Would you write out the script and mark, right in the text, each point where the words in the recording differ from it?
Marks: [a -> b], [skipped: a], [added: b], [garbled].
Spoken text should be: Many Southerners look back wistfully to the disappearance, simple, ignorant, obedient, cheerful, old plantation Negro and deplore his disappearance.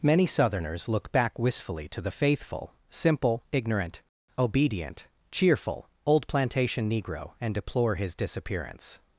Many Southerners look back wistfully to the [disappearance, -> faithful] simple, ignorant, obedient, cheerful, old plantation Negro and deplore his disappearance.